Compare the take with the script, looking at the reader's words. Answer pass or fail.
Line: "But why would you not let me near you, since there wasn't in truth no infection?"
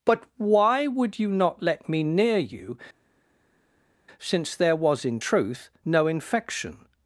fail